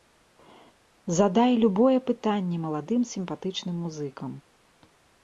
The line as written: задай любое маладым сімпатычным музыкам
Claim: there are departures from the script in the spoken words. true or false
true